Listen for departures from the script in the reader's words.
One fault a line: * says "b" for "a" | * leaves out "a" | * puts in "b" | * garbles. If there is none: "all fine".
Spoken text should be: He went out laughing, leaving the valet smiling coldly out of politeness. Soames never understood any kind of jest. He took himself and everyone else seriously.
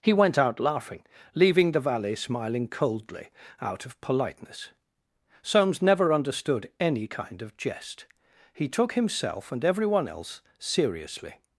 all fine